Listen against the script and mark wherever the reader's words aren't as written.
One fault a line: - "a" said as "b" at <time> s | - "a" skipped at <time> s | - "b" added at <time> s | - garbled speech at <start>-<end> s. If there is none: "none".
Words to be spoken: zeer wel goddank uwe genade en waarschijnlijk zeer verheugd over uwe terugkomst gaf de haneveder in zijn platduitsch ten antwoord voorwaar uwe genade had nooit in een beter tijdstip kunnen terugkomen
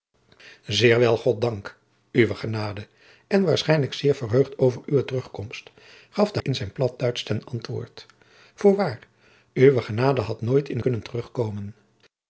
- "haneveder" skipped at 6.4 s
- "een beter tijdstip" skipped at 10.8 s